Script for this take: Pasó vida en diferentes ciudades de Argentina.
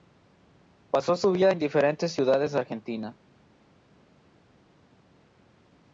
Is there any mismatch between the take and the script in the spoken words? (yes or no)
yes